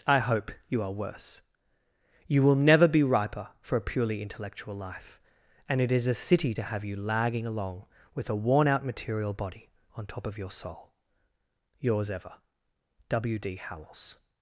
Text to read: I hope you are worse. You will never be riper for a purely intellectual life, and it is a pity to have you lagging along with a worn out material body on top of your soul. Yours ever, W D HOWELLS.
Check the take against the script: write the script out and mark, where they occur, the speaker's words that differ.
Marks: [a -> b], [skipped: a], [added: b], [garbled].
I hope you are worse. You will never be riper for a purely intellectual life, and it is a [pity -> city] to have you lagging along with a worn out material body on top of your soul. Yours ever, W D HOWELLS.